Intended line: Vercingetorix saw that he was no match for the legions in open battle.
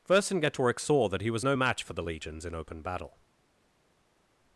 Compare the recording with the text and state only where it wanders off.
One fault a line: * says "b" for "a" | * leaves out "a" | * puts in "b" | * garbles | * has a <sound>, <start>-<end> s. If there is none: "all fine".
all fine